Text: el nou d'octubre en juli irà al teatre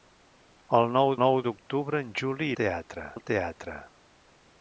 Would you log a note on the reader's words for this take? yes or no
yes